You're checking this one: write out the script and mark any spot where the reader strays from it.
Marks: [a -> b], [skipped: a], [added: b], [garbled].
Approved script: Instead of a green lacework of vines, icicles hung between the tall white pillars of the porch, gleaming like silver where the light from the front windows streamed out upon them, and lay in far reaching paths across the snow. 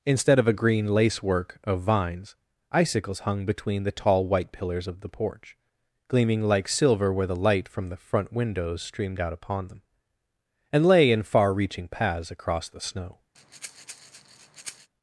Instead of a green lacework of vines, icicles hung between the tall white pillars of the porch, gleaming like silver where the light from the front windows streamed out upon them, and lay in far reaching paths across the snow.